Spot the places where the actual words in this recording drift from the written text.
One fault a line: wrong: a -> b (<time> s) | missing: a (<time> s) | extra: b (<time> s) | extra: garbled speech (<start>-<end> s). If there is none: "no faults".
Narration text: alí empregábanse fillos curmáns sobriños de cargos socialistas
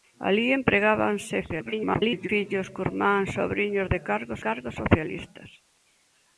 extra: garbled speech (1.5-2.3 s)
extra: cargos (4.5 s)